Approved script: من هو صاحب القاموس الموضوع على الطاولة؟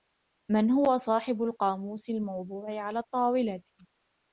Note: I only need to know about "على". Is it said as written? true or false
true